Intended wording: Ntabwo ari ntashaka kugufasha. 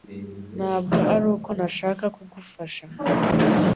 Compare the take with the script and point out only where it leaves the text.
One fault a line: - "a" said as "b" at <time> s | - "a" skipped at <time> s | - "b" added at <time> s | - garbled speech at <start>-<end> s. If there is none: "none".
- "uko" added at 1.4 s